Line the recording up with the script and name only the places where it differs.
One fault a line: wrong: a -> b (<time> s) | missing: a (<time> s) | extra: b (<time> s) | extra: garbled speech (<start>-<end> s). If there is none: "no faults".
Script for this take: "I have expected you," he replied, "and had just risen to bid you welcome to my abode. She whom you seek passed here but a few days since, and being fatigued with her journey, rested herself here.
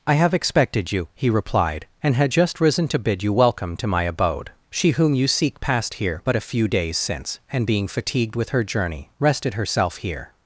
no faults